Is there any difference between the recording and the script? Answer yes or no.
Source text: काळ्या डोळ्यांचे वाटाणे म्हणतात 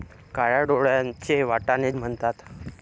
no